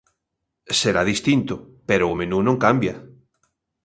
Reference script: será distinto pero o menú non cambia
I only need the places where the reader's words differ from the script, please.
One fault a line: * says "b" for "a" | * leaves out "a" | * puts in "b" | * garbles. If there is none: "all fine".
all fine